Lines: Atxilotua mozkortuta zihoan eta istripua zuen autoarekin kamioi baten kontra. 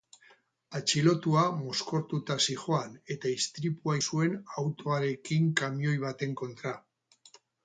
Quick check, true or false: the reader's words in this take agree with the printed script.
true